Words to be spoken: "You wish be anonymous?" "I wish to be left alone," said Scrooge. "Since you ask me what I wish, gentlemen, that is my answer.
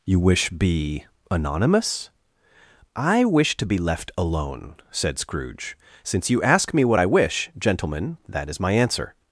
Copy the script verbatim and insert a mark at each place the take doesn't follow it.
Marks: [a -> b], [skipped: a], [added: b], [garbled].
"You wish be anonymous?" "I wish to be left alone," said Scrooge. "Since you ask me what I wish, gentlemen, that is my answer.